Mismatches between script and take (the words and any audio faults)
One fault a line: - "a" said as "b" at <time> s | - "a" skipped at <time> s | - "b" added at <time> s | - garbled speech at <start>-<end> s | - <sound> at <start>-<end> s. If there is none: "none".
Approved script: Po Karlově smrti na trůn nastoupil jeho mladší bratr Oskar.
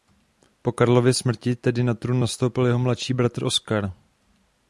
- "tedy" added at 1.6 s